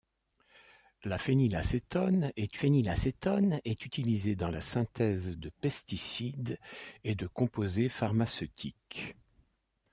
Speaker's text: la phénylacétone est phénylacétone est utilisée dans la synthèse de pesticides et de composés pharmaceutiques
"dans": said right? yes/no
yes